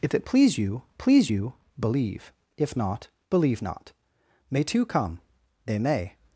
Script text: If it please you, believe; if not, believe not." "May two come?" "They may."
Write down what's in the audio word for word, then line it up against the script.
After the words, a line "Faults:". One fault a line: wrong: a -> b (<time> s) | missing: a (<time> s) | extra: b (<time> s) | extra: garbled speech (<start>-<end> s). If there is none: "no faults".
If it please you please you, believe; if not, believe not." "May two come?" "They may."
Faults:
extra: please you (1.0 s)